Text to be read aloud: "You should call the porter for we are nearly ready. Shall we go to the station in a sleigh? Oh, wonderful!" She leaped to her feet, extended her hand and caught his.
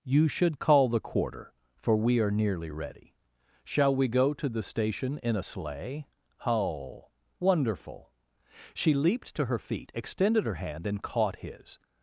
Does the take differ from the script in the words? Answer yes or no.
yes